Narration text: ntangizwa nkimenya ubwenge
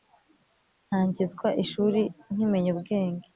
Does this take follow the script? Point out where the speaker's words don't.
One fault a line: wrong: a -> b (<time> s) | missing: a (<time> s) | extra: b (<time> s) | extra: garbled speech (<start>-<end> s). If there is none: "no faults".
extra: ishuri (1.6 s)